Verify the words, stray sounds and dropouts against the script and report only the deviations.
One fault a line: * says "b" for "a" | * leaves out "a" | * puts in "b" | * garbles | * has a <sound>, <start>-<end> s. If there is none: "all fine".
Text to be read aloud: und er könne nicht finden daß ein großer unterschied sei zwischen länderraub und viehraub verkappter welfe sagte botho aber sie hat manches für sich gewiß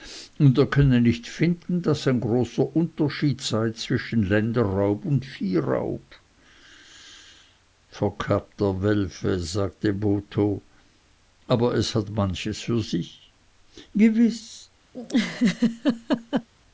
* says "es" for "sie"
* has a laugh, 14.9-16.5 s